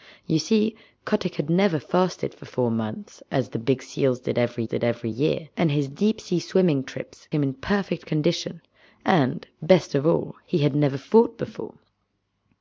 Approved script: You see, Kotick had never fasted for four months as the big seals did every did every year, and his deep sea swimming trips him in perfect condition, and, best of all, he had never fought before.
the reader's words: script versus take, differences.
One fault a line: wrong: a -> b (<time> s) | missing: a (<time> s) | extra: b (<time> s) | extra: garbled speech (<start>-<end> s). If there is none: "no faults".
no faults